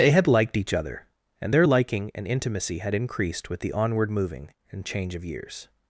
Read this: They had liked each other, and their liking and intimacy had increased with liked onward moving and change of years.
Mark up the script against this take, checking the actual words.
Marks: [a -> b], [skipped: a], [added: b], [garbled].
They had liked each other, and their liking and intimacy had increased with [liked -> the] onward moving and change of years.